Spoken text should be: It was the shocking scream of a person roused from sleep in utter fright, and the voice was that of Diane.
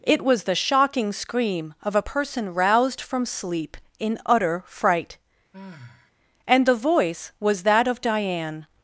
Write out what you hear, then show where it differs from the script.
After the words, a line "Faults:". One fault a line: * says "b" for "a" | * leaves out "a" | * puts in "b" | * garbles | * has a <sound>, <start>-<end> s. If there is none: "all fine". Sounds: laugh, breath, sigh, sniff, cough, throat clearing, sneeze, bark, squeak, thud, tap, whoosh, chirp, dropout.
It was the shocking scream of a person roused from sleep in utter fright, and the voice was that of Diane.
Faults:
* has a sigh, 5.5-6.1 s